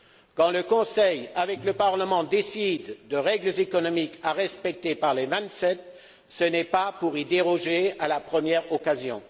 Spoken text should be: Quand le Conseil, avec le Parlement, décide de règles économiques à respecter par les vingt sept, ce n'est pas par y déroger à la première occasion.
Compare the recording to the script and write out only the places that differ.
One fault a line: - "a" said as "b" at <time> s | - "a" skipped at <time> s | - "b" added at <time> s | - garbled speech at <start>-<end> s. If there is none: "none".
- "par" said as "pour" at 7.0 s